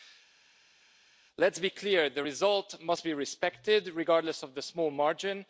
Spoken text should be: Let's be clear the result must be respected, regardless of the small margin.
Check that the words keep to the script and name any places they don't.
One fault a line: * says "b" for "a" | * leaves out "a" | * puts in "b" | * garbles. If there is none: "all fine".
all fine